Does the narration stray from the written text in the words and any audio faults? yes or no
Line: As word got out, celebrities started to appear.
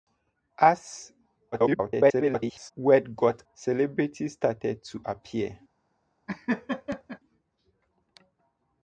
yes